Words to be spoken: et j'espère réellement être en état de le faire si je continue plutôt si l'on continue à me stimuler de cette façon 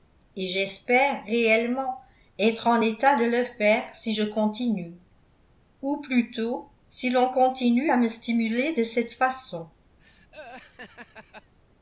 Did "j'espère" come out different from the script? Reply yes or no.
no